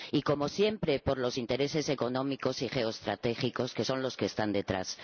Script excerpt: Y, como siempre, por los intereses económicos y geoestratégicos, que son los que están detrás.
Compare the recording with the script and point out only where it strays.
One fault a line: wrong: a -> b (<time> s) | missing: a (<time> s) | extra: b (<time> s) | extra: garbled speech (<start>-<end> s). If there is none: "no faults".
no faults